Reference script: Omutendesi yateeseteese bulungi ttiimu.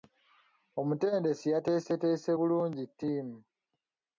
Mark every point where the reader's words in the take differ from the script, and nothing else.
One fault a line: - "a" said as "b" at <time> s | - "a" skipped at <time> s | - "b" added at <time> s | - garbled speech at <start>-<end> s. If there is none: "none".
none